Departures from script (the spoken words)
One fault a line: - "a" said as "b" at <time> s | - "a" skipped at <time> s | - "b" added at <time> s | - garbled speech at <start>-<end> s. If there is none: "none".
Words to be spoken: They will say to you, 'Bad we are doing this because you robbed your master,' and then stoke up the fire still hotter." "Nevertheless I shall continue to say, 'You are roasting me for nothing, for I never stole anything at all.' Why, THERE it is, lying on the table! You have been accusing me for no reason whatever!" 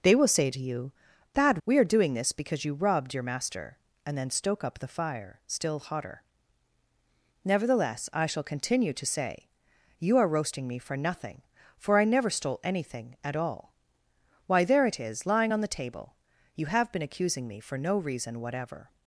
none